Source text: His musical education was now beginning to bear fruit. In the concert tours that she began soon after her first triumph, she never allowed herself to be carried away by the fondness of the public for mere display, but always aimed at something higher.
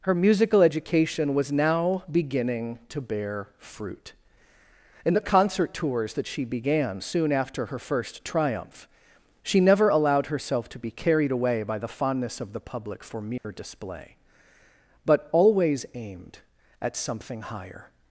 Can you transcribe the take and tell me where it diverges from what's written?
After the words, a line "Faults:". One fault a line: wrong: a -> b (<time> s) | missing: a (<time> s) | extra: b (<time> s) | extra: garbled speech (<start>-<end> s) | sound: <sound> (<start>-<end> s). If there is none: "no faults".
Her musical education was now beginning to bear fruit. In the concert tours that she began soon after her first triumph, she never allowed herself to be carried away by the fondness of the public for mere display, but always aimed at something higher.
Faults:
wrong: His -> Her (0.0 s)
sound: dropout (13.4-13.4 s)